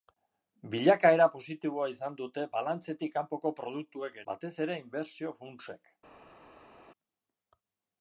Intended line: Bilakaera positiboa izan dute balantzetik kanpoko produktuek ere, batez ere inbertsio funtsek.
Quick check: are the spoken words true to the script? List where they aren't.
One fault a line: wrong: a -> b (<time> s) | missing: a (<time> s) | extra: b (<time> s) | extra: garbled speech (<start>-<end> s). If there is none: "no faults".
missing: ere (4.2 s)